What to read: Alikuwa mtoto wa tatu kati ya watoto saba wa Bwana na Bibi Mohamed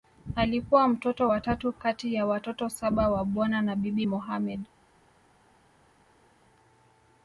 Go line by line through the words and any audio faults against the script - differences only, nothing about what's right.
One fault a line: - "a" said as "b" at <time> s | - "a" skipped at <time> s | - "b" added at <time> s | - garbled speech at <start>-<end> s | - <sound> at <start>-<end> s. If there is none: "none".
none